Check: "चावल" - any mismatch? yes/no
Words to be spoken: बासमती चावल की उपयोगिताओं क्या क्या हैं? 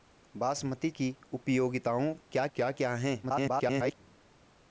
yes